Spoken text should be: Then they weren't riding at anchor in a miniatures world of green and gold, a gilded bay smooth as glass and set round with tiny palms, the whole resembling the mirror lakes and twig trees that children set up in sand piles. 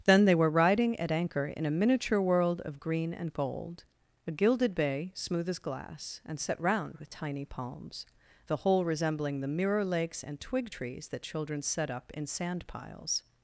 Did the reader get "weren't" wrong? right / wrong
wrong